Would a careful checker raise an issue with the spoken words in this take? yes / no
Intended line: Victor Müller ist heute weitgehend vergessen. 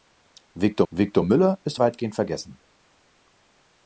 yes